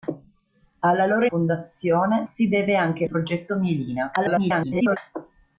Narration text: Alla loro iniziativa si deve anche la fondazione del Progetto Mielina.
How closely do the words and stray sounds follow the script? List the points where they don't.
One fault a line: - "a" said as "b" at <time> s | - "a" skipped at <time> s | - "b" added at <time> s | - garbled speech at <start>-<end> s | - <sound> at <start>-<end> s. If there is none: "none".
- "iniziativa" said as "fondazione" at 1.2 s
- "la fondazione del" skipped at 3.1 s
- garbled speech at 4.2-5.0 s